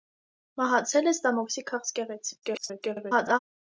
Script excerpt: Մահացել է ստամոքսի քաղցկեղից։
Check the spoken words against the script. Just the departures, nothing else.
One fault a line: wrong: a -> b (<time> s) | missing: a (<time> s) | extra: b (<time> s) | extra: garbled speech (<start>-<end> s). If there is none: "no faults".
extra: garbled speech (2.4-3.4 s)